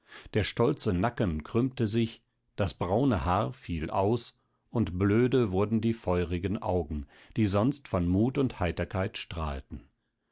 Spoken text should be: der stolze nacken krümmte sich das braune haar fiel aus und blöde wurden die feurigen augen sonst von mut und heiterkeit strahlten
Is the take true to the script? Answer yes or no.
no